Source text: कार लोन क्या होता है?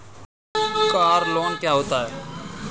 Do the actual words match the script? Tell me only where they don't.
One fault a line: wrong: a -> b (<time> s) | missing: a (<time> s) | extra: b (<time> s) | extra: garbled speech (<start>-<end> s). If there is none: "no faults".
no faults